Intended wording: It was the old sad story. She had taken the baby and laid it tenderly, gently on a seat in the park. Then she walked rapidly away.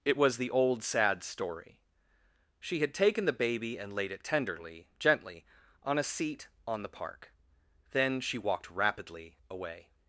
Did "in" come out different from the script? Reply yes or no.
yes